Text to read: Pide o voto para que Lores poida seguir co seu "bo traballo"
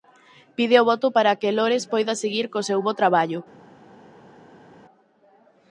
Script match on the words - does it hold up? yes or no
yes